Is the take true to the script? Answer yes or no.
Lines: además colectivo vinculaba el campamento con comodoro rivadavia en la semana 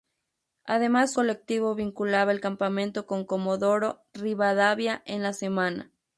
yes